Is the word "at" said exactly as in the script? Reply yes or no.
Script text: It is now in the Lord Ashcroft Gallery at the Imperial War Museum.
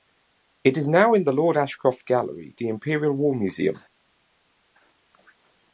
no